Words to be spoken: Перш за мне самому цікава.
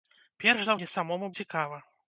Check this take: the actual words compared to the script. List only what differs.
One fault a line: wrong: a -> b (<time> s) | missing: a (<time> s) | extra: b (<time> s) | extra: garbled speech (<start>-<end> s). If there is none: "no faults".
no faults